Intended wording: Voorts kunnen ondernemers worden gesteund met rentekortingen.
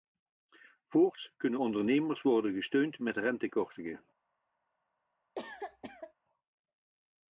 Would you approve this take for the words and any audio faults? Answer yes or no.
no